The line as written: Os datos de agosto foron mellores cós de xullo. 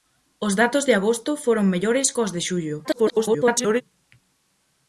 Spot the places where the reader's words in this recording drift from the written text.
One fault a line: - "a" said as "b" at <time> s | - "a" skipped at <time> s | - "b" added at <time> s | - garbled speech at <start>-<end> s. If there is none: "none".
- garbled speech at 2.8-3.8 s